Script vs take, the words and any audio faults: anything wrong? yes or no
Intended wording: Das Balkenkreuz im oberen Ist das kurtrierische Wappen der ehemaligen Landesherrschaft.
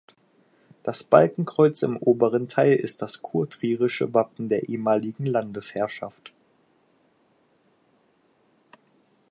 yes